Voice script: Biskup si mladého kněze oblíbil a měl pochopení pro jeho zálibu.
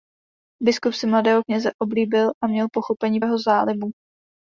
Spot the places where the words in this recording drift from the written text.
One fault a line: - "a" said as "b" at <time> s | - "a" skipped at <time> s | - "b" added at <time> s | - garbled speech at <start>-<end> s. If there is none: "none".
- "pro" skipped at 3.2 s